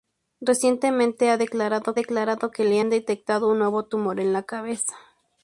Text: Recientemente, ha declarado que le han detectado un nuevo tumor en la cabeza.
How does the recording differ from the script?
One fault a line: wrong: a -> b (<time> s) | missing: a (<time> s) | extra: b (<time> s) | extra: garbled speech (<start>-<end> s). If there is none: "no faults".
extra: declarado (1.9 s)